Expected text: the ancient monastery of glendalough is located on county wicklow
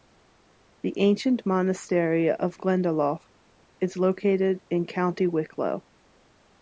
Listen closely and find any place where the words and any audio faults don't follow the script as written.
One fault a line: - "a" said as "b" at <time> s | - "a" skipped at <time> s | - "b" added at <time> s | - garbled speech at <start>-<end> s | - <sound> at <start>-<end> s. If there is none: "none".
- "on" said as "in" at 4.7 s